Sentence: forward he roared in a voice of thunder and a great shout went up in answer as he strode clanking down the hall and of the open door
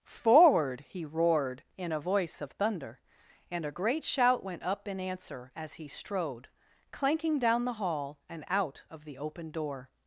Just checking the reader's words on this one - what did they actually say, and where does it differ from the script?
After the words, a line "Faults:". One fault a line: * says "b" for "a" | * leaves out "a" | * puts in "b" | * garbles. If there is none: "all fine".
forward he roared in a voice of thunder and a great shout went up in answer as he strode clanking down the hall and out of the open door
Faults:
* puts in "out"